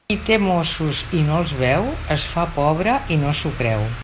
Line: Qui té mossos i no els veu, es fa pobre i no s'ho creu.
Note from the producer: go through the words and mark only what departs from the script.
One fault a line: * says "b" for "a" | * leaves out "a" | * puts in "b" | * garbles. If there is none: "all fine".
all fine